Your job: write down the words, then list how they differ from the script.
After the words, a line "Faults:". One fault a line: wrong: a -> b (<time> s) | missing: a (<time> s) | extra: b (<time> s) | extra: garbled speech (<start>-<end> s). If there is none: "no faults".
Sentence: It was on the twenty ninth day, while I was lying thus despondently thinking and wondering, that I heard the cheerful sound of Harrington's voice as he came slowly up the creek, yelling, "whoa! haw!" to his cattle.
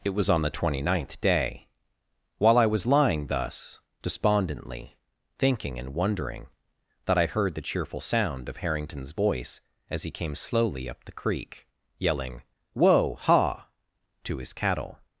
It was on the twenty ninth day, while I was lying thus despondently thinking and wondering, that I heard the cheerful sound of Harrington's voice as he came slowly up the creek, yelling, "whoa! haw!" to his cattle.
Faults:
no faults